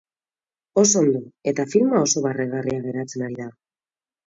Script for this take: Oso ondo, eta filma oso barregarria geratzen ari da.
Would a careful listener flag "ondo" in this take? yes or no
no